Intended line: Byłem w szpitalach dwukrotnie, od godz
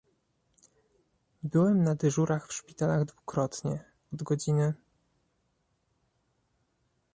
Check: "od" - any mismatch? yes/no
no